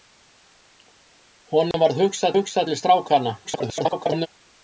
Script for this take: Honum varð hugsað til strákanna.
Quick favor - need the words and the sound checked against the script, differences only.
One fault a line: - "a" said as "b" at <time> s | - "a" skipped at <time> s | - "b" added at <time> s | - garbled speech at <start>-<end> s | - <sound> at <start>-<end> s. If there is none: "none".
- dropout at 1.7-1.7 s
- "hugsað" added at 2.4 s
- garbled speech at 3.4-4.3 s